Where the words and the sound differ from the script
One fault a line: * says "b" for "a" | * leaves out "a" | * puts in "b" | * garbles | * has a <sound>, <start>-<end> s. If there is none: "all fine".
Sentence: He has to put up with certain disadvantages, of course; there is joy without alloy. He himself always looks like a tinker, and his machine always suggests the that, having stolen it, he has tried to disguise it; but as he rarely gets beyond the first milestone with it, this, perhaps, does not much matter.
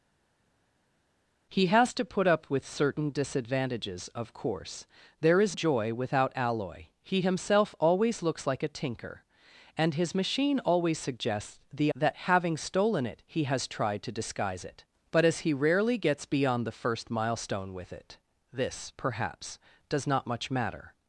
all fine